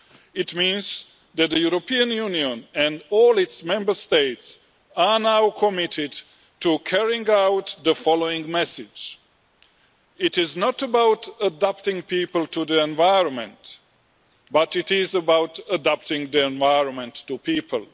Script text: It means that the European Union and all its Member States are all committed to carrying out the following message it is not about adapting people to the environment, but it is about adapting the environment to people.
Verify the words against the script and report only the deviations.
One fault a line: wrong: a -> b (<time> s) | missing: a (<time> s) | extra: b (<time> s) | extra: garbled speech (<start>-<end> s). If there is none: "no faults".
wrong: all -> now (5.2 s)